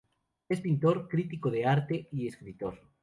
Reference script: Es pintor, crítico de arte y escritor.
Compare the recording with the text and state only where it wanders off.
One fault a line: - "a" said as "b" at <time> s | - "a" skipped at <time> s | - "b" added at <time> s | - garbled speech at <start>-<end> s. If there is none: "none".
none